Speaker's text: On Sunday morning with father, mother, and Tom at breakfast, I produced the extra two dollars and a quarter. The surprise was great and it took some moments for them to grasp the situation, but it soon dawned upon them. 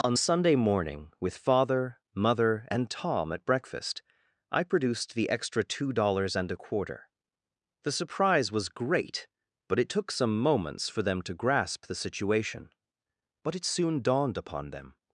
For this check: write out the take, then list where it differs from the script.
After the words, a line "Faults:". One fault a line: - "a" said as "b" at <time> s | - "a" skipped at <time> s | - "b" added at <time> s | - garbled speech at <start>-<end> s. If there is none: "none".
On Sunday morning with father, mother, and Tom at breakfast, I produced the extra two dollars and a quarter. The surprise was great but it took some moments for them to grasp the situation, but it soon dawned upon them.
Faults:
- "and" said as "but" at 9.7 s